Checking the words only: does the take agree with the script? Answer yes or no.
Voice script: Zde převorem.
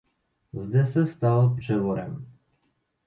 no